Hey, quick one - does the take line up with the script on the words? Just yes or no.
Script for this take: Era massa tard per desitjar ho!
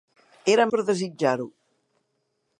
no